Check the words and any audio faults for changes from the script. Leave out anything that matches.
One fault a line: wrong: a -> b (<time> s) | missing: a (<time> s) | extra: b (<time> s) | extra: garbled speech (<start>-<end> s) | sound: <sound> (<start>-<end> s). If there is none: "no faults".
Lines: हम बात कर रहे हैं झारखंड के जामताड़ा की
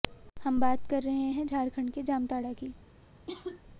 sound: cough (3.3-3.6 s)